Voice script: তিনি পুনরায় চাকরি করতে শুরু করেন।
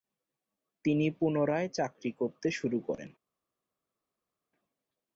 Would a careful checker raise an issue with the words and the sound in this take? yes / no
no